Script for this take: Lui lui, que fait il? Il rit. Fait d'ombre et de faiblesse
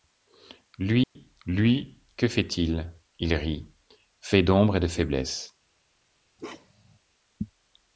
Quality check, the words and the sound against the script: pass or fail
fail